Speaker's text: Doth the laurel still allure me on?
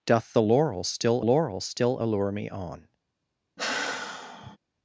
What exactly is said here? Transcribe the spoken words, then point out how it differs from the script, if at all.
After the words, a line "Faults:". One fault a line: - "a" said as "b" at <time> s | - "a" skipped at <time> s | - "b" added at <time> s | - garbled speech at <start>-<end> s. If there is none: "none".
Doth the laurel still laurel still allure me on?
Faults:
- "laurel still" added at 1.2 s